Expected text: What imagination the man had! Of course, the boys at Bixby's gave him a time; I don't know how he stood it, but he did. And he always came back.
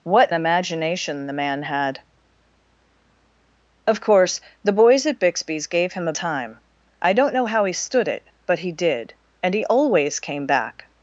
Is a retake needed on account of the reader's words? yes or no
no